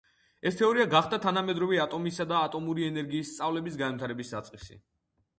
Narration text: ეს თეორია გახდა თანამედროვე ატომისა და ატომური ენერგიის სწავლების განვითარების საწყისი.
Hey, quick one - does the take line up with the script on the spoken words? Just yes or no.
yes